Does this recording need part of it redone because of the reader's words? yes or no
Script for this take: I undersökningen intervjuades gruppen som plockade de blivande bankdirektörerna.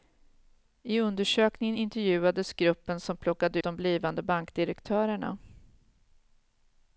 no